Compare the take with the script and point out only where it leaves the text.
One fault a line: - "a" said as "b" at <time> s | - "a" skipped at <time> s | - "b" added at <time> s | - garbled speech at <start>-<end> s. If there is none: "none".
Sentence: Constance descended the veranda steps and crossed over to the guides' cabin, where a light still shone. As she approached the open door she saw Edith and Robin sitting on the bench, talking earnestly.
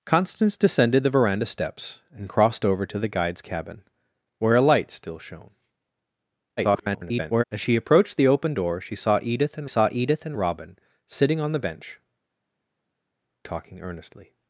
- garbled speech at 6.6-7.4 s
- "saw Edith and" added at 9.6 s